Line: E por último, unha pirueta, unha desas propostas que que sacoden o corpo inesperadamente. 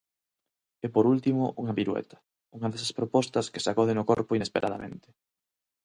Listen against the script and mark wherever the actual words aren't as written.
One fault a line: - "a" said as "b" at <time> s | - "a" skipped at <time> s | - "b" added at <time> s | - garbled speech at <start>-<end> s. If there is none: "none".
- "que" skipped at 3.6 s